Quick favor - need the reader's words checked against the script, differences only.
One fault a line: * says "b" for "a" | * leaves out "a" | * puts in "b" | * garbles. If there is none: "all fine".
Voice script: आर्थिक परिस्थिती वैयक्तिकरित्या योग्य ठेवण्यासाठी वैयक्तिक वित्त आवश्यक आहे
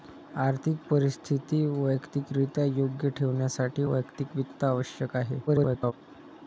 * garbles